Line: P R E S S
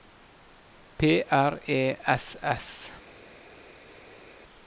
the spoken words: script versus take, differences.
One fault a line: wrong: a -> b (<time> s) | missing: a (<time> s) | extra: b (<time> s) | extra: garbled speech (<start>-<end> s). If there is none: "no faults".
no faults